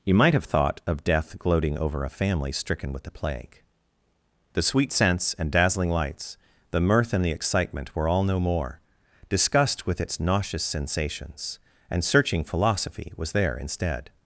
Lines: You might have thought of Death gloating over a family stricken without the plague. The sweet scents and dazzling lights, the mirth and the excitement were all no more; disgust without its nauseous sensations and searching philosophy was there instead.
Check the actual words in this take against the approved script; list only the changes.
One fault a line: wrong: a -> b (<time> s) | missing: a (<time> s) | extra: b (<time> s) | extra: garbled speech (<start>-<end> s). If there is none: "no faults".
wrong: without -> with (2.9 s)
wrong: without -> with (9.8 s)